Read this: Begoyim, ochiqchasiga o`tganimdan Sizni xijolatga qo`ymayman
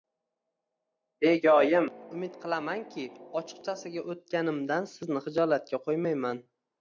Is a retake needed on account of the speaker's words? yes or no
yes